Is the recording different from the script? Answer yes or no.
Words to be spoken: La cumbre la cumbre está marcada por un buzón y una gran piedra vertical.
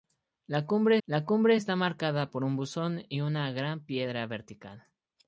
no